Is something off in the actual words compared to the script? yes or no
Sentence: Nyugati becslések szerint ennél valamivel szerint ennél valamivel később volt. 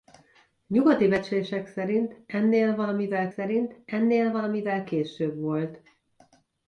no